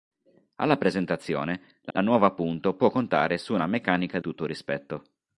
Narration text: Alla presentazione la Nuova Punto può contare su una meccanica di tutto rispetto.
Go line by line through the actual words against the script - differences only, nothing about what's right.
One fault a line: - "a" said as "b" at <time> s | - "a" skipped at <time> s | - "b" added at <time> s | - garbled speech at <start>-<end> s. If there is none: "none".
- "la" added at 1.9 s
- "di" skipped at 4.2 s